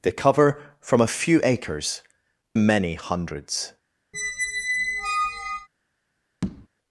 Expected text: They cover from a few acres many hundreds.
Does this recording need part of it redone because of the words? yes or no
no